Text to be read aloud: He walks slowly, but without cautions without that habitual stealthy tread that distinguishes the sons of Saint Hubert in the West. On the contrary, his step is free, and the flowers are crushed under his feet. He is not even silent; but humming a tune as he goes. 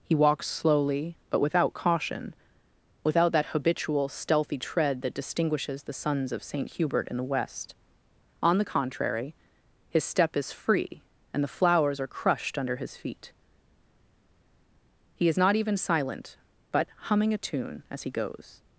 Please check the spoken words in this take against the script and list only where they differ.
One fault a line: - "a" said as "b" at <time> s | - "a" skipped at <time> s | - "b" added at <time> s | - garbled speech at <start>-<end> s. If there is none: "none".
- "cautions" said as "caution" at 1.7 s